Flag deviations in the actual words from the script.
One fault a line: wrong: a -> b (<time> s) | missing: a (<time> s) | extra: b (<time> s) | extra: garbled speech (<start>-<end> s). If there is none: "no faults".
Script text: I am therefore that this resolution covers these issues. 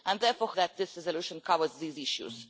no faults